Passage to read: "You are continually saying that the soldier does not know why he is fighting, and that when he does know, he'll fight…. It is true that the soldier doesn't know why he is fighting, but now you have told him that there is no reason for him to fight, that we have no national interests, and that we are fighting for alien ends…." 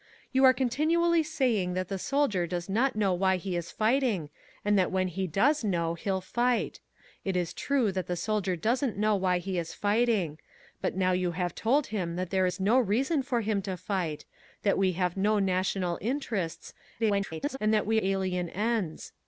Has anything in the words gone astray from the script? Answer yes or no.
yes